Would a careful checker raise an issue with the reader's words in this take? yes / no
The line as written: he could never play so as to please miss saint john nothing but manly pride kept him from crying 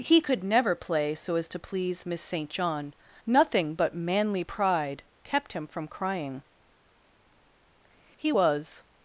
yes